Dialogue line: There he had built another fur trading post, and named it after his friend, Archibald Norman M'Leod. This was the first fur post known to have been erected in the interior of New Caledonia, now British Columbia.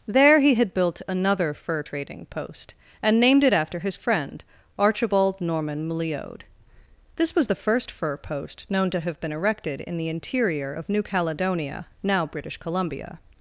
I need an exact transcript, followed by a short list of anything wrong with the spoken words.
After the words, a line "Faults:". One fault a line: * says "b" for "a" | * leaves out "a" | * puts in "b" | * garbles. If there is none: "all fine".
There he had built another fur trading post, and named it after his friend, Archibald Norman M'Leod. This was the first fur post known to have been erected in the interior of New Caledonia, now British Columbia.
Faults:
all fine